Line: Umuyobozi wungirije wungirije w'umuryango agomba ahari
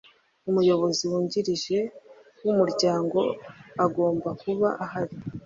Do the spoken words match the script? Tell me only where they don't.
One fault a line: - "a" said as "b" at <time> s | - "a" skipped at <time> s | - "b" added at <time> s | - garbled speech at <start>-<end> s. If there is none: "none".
- "wungirije" skipped at 1.8 s
- "kuba" added at 4.4 s